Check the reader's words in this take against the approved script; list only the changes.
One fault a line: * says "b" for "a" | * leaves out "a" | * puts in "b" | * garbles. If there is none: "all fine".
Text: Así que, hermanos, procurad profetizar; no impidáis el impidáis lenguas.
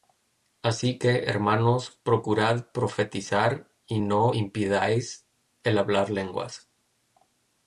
* puts in "y"
* says "hablar" for "impidáis"